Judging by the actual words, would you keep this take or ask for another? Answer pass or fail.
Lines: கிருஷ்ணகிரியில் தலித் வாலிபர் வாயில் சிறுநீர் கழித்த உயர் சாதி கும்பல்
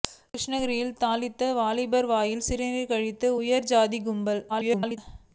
fail